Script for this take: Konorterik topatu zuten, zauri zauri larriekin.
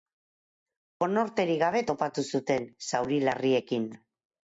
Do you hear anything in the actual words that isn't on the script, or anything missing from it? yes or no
yes